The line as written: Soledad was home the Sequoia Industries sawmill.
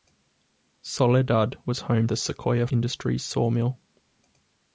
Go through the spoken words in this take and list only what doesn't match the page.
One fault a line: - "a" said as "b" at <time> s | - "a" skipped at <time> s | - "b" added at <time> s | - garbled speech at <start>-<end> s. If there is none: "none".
none